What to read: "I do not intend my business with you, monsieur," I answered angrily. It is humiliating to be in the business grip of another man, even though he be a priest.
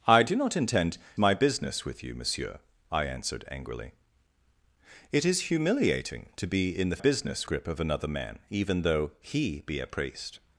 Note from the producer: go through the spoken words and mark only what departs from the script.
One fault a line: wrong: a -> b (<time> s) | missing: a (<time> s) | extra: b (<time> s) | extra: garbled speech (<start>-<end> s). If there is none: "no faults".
no faults